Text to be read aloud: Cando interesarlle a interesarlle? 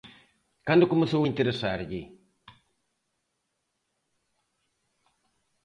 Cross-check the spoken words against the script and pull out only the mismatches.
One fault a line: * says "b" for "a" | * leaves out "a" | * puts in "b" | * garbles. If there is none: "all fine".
* says "comezou" for "interesarlle"